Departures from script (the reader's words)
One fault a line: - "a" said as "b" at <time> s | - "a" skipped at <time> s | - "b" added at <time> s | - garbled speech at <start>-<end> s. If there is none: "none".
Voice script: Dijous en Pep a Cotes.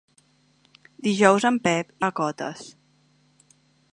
none